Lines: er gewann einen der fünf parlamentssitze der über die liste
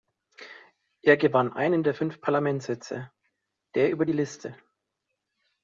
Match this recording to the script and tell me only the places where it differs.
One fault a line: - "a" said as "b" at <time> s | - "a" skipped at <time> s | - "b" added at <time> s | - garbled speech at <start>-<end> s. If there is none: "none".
none